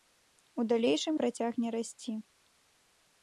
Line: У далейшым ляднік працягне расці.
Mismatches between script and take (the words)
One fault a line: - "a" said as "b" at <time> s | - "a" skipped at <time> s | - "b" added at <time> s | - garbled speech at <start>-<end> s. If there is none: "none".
- "ляднік" skipped at 1.1 s